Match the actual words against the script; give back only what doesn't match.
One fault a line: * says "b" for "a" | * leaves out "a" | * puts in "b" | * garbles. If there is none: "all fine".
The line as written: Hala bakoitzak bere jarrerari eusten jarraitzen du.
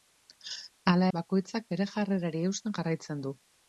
all fine